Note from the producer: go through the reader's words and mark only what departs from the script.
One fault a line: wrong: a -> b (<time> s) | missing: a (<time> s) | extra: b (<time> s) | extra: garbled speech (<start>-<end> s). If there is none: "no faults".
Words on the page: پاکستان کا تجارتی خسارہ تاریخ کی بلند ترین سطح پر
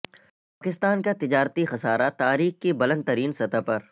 no faults